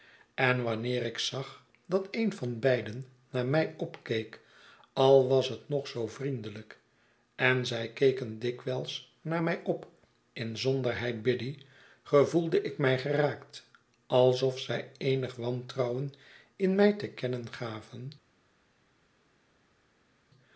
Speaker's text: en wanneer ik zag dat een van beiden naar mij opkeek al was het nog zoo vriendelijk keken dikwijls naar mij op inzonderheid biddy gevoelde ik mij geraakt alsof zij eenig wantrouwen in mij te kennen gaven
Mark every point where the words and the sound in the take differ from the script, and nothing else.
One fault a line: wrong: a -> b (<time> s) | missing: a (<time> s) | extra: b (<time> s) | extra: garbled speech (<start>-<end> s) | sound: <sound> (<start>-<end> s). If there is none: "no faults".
extra: en zij (7.4 s)